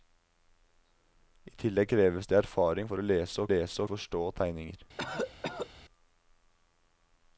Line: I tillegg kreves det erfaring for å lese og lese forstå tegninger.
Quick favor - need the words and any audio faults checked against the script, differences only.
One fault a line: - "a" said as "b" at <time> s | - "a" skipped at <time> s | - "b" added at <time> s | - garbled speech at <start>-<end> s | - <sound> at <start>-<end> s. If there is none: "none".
- cough at 5.0-5.7 s